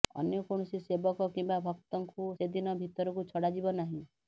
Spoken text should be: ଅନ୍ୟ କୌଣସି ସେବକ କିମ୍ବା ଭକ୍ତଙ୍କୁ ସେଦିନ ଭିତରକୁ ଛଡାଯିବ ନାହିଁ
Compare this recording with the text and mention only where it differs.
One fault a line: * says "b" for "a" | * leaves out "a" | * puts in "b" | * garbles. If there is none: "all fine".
all fine